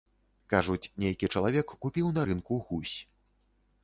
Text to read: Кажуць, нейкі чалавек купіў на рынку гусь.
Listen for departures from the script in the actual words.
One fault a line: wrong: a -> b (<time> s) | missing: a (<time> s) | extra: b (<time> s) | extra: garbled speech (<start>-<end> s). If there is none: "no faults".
no faults